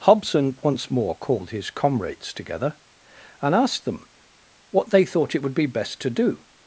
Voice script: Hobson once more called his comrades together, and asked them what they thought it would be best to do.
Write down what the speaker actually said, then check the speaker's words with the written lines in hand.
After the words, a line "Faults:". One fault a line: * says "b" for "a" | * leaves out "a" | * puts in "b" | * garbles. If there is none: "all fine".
Hobson once more called his comrades together, and asked them what they thought it would be best to do.
Faults:
all fine